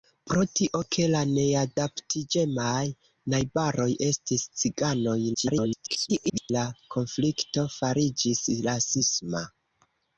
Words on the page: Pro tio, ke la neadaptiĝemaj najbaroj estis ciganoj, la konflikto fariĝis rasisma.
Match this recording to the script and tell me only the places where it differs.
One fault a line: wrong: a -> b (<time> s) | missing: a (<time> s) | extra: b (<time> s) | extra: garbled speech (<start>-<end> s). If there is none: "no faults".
extra: garbled speech (5.3-6.5 s)